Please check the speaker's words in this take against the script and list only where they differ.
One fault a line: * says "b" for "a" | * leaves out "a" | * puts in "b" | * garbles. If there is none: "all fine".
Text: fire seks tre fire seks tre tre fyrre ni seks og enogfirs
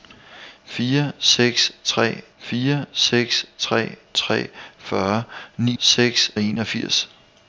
all fine